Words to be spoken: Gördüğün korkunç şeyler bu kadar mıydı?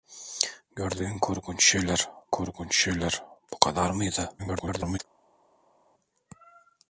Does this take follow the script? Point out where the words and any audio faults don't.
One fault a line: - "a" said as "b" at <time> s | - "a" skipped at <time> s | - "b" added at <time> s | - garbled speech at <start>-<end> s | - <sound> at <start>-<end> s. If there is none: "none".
- "korkunç şeyler" added at 2.3 s
- garbled speech at 4.4-5.0 s